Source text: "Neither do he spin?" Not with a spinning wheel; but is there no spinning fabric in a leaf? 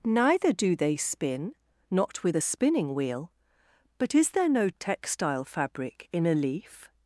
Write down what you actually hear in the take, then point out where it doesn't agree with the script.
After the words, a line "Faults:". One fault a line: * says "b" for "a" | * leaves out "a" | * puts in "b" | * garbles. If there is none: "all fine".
"Neither do they spin?" Not with a spinning wheel; but is there no textile fabric in a leaf?
Faults:
* says "they" for "he"
* says "textile" for "spinning"